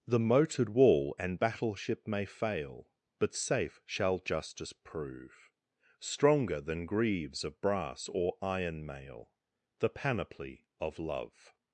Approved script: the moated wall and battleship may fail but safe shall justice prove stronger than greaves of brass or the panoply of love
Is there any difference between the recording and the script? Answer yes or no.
yes